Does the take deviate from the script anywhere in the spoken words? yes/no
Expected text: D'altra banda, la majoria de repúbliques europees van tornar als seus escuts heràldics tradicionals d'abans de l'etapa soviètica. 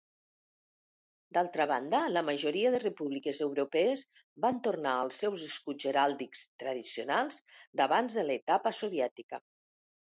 no